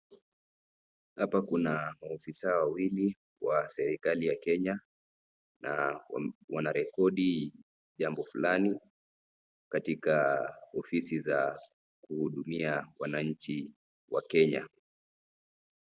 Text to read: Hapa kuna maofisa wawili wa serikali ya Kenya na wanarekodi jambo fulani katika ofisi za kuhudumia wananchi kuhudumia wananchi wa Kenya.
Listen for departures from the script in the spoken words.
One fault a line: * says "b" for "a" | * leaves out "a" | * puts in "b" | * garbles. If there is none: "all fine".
* leaves out "kuhudumia wananchi"